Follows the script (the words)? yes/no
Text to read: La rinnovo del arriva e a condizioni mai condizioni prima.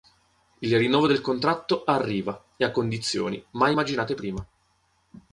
no